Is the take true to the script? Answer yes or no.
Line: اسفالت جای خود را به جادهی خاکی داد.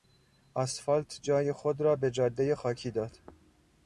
yes